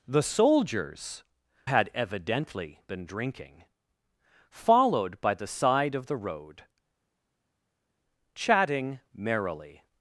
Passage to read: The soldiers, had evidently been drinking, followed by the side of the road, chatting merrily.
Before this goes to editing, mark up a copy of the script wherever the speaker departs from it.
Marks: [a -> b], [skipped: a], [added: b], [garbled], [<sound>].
The soldiers, had evidently been drinking, followed by the side of the road, chatting merrily.